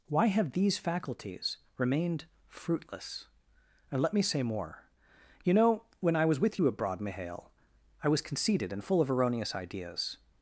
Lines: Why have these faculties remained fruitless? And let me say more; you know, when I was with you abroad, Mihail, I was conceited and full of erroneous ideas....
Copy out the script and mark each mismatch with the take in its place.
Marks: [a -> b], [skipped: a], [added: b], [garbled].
Why have these faculties remained fruitless? And let me say more; you know, when I was with you abroad, Mihail, I was conceited and full of erroneous ideas....